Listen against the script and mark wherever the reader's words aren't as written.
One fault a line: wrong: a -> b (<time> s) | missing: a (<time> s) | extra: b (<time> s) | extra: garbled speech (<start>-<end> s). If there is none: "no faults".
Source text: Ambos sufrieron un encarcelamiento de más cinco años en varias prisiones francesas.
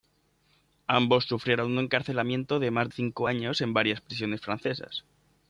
no faults